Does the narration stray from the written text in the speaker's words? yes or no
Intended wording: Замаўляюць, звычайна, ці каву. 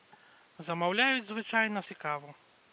no